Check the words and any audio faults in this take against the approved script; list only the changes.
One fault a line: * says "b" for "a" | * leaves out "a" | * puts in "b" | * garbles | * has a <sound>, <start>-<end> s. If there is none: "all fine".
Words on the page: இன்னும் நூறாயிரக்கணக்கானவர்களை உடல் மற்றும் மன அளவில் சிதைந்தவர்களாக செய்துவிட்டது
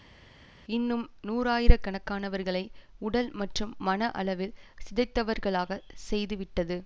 all fine